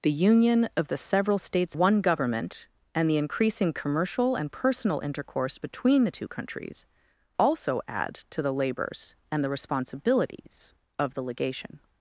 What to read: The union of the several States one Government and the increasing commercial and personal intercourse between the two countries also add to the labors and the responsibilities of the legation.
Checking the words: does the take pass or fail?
pass